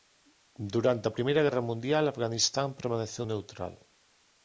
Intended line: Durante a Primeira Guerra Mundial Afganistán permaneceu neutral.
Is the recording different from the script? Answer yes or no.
no